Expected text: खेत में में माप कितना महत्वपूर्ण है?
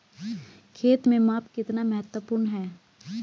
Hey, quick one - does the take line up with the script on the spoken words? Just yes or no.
no